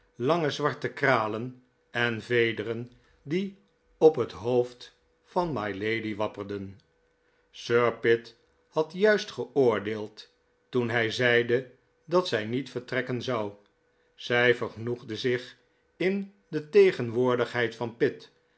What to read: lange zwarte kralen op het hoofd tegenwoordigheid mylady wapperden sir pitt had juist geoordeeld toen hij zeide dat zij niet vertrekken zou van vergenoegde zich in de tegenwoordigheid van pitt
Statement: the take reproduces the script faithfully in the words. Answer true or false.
false